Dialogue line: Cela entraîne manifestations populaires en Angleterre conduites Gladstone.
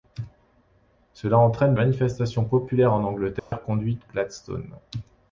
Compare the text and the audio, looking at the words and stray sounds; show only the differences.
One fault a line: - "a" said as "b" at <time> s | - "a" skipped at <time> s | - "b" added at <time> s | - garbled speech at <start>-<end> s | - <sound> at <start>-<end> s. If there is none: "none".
- dropout at 3.4-3.5 s